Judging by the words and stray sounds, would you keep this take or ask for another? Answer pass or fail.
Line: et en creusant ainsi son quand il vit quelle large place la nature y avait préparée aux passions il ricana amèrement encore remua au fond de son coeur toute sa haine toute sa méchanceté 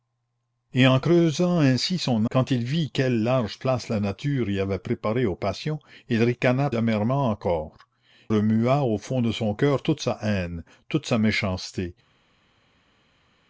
pass